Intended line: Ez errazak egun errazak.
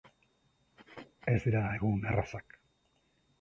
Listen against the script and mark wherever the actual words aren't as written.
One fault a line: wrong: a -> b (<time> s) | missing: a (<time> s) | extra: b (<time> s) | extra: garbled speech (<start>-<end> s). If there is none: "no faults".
wrong: errazak -> dira (1.4 s)